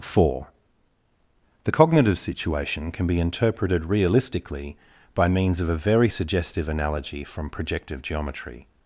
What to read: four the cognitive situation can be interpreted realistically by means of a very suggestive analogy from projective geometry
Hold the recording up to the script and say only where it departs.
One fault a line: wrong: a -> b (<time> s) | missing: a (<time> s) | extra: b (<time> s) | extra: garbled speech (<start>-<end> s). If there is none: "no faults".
no faults